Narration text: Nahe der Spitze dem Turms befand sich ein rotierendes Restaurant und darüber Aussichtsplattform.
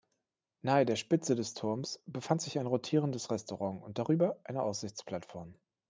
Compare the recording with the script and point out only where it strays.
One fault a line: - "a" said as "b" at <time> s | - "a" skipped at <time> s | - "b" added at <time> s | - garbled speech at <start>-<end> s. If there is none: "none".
- "dem" said as "des" at 1.4 s
- "eine" added at 4.5 s